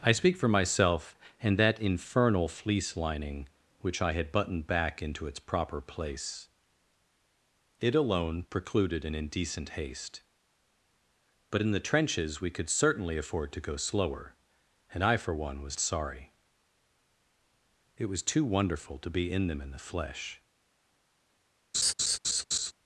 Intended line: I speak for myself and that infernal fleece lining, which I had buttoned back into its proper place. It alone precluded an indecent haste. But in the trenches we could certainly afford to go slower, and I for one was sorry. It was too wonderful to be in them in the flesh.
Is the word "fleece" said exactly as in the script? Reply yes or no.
yes